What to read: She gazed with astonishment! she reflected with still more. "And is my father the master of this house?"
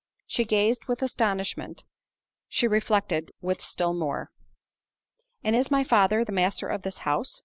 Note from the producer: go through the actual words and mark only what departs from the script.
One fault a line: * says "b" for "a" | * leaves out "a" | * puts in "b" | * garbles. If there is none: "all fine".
all fine